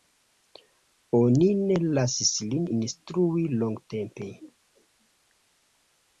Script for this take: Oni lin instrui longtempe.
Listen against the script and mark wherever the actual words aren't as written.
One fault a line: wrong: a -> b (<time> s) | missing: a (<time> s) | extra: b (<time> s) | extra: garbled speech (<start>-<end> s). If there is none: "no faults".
extra: ne lasis (1.6 s)